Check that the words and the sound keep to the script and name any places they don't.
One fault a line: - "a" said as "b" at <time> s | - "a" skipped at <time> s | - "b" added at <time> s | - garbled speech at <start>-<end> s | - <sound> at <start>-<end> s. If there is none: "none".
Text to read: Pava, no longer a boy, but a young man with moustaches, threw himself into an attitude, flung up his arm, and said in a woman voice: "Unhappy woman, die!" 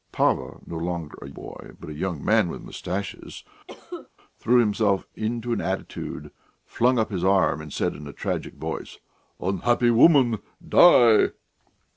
- cough at 3.7-4.1 s
- "woman" said as "tragic" at 8.1 s